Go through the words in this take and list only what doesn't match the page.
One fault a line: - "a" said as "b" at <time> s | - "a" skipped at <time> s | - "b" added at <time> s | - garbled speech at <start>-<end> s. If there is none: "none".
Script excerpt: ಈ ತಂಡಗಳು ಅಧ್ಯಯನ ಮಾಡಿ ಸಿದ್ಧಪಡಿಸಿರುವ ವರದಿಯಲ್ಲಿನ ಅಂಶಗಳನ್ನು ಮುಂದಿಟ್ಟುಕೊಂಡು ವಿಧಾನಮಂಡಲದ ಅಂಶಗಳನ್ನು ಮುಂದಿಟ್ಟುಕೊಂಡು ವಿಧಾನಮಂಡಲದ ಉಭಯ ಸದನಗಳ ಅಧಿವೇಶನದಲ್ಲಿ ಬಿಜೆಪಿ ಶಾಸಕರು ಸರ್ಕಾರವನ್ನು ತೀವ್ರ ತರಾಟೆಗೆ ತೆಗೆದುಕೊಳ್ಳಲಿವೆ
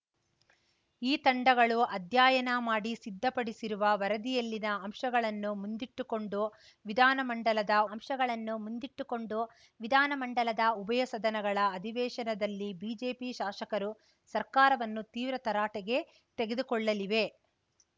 none